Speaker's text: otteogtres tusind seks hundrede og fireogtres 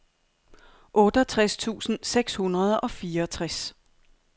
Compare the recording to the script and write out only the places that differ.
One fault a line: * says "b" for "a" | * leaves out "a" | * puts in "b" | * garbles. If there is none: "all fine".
all fine